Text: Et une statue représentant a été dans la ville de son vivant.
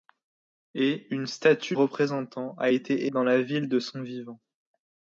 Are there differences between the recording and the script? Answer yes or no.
no